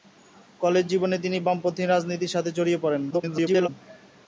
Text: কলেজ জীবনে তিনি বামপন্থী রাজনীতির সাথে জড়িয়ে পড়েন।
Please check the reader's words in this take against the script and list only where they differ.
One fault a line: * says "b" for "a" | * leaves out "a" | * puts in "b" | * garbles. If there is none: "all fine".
* garbles